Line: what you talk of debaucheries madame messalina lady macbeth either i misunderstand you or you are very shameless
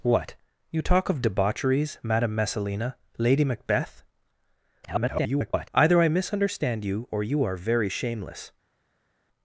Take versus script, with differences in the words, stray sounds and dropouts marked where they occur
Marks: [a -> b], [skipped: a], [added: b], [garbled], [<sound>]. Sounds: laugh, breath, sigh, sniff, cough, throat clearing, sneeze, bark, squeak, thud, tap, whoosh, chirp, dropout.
what you talk of debaucheries madame messalina lady macbeth [garbled] either i misunderstand you or you are very shameless